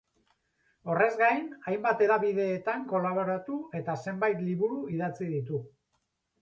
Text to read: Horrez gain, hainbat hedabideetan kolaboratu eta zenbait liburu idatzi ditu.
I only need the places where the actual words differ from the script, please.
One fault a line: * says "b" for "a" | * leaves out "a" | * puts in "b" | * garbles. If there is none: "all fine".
all fine